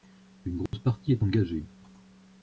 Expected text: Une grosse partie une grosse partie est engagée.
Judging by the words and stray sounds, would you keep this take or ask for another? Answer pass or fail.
fail